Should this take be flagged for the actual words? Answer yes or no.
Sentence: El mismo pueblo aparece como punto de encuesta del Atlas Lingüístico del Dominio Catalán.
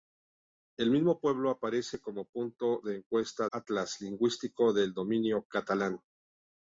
yes